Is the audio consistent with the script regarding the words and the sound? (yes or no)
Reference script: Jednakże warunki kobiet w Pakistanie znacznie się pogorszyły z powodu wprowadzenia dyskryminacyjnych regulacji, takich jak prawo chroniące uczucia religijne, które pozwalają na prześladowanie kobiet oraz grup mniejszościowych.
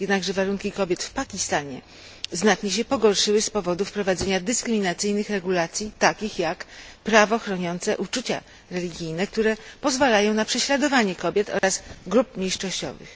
no